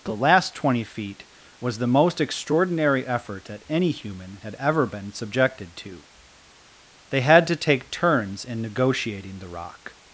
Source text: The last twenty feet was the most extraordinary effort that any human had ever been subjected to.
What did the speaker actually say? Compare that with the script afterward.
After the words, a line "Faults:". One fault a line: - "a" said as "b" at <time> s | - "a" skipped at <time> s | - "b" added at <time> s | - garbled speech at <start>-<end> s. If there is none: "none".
The last twenty feet was the most extraordinary effort that any human had ever been subjected to. They had to take turns in negotiating the rock
Faults:
- "They had to take turns in negotiating the rock" added at 7.1 s